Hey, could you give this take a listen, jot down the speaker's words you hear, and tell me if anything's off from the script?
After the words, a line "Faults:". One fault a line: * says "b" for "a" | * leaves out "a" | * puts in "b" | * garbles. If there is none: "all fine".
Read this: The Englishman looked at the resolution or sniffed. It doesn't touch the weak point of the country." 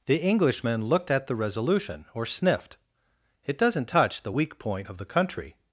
The Englishman looked at the resolution or sniffed. It doesn't touch the weak point of the country."
Faults:
all fine